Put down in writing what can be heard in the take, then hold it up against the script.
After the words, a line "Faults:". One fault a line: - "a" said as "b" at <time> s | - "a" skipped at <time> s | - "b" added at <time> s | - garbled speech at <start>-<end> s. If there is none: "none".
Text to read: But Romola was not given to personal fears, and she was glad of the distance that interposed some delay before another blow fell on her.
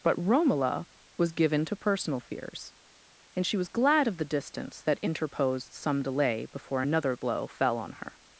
But Romola was given to personal fears, and she was glad of the distance that interposed some delay before another blow fell on her.
Faults:
- "not" skipped at 1.3 s